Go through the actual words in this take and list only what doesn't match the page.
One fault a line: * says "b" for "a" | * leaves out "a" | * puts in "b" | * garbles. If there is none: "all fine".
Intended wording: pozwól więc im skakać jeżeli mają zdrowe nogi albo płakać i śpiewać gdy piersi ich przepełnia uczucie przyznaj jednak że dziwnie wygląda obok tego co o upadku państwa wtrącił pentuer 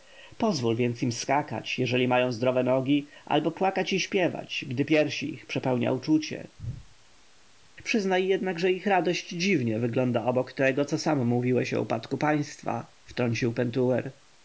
* puts in "ich radość"
* puts in "sam mówiłeś"